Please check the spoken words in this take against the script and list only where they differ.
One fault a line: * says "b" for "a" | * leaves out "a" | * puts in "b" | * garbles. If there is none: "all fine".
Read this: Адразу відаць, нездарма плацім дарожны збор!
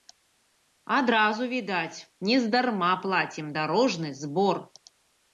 all fine